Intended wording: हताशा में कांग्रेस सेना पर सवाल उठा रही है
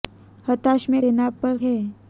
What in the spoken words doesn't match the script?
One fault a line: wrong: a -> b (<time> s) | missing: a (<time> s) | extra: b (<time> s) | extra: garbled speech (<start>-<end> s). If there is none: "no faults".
missing: कांग्रेस (1.0 s)
missing: सवाल उठा रही (1.6 s)